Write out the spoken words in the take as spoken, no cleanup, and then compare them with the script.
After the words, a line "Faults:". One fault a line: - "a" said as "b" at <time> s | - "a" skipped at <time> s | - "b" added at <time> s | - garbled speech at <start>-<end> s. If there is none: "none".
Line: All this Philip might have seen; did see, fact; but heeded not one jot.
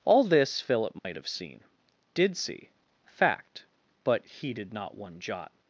All this Philip might have seen; did see, fact; but heeded not one jot.
Faults:
none